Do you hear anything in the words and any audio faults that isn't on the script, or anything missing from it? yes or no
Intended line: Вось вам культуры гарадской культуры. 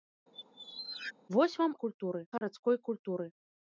yes